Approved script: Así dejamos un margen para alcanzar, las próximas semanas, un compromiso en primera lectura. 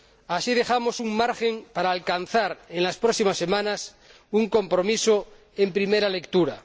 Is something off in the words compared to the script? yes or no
yes